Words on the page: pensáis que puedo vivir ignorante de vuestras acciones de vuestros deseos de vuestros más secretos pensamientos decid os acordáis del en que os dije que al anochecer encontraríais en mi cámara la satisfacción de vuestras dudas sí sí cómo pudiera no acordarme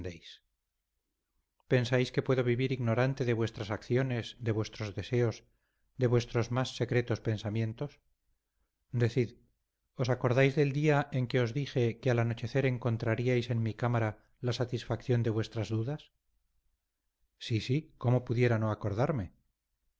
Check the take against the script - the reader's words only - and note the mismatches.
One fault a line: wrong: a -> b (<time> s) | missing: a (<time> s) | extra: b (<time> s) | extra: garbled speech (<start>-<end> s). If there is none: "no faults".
extra: día (10.8 s)